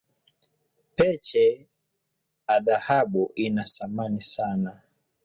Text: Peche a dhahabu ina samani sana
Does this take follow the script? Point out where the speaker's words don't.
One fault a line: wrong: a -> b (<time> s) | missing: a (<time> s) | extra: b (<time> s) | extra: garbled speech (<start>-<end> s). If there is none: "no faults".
no faults